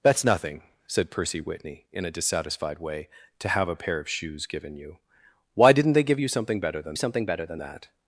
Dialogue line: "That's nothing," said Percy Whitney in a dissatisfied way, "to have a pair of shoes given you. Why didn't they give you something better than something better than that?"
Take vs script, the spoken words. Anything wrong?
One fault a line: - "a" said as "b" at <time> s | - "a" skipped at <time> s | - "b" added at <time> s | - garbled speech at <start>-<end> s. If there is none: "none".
none